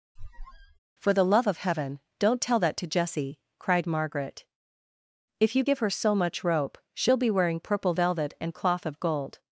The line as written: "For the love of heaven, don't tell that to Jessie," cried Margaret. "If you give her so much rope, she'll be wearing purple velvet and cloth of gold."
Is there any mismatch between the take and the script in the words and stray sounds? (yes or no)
yes